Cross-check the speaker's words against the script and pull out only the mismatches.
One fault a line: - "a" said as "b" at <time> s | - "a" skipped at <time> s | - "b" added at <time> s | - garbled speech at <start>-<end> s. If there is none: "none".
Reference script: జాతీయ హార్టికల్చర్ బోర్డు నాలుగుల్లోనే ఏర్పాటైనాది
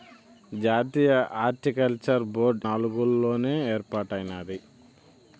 none